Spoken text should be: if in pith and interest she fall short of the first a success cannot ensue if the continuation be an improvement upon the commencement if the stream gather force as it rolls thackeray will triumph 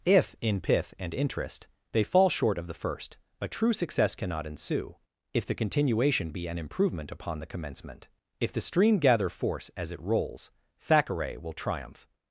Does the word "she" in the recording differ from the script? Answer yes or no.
yes